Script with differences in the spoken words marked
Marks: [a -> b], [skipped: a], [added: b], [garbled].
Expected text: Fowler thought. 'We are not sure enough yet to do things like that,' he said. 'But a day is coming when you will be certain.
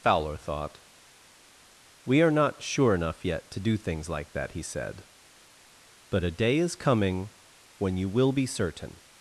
Fowler thought. 'We are not sure enough yet to do things like that,' he said. 'But a day is coming when you will be certain.